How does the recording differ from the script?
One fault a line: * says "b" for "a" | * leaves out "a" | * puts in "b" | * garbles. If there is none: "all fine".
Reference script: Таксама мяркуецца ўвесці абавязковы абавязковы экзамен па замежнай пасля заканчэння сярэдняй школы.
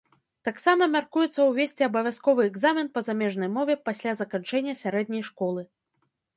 * leaves out "абавязковы"
* puts in "мове"